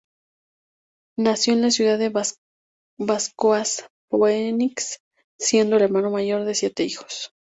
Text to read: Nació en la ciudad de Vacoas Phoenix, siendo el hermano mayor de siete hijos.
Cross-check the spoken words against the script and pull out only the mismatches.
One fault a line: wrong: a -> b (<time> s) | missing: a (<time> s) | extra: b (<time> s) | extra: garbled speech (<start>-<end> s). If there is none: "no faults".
no faults